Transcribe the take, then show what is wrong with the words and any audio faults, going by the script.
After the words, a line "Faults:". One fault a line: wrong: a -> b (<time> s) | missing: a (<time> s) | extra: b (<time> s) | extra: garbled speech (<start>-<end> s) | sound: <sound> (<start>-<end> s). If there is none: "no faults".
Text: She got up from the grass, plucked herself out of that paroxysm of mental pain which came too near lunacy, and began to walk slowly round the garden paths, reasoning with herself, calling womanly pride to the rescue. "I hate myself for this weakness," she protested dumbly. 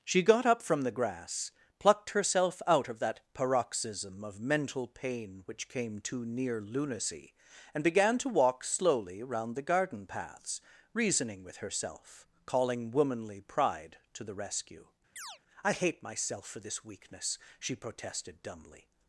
She got up from the grass, plucked herself out of that paroxysm of mental pain which came too near lunacy, and began to walk slowly round the garden paths, reasoning with herself, calling womanly pride to the rescue. "I hate myself for this weakness," she protested dumbly.
Faults:
sound: chirp (15.2-15.4 s)